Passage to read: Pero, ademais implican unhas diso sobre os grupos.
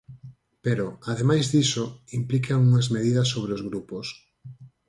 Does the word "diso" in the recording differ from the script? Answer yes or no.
yes